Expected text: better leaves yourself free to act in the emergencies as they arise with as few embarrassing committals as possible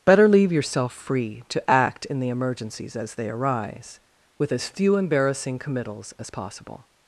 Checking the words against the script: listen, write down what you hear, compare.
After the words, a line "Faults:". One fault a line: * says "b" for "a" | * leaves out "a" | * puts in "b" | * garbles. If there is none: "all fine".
better leave yourself free to act in the emergencies as they arise with as few embarrassing committals as possible
Faults:
* says "leave" for "leaves"